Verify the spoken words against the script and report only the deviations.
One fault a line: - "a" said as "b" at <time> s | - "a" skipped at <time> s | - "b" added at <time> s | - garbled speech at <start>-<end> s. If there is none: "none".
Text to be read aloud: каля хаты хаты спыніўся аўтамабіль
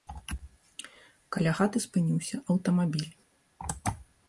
- "хаты" skipped at 1.8 s